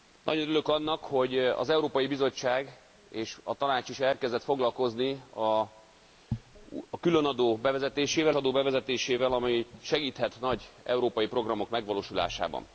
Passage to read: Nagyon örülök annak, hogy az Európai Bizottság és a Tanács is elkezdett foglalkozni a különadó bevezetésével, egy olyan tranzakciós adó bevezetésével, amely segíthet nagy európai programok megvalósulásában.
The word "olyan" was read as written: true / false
false